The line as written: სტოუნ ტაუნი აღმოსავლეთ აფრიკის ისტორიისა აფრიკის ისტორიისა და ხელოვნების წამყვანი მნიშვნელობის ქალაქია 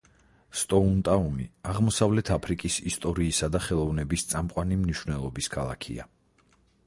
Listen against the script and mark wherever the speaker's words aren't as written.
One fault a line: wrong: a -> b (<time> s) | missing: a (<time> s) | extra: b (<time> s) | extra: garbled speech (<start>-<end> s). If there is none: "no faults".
missing: აფრიკის ისტორიისა (3.5 s)